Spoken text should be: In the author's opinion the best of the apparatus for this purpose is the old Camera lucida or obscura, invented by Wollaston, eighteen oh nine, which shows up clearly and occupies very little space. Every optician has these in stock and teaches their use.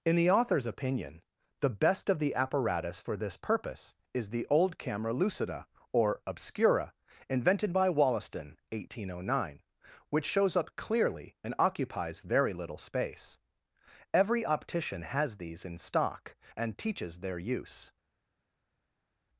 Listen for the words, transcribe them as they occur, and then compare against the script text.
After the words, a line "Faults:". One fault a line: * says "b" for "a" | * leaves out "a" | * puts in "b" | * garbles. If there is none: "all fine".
In the author's opinion the best of the apparatus for this purpose is the old Camera lucida or obscura, invented by Wollaston, eighteen oh nine, which shows up clearly and occupies very little space. Every optician has these in stock and teaches their use.
Faults:
all fine